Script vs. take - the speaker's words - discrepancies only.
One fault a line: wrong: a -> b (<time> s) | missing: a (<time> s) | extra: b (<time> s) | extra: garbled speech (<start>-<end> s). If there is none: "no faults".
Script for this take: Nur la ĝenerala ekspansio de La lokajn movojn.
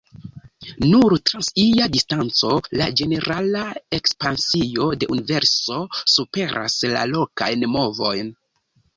extra: trans ia distanco (1.3 s)
extra: Universo superas (5.2 s)